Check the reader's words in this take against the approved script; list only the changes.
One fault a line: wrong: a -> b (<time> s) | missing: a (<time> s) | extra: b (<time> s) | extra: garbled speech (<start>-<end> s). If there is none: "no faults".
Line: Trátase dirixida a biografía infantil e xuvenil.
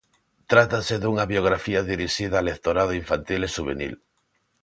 extra: dunha biografía (1.0 s)
wrong: biografía -> lectorado (2.5 s)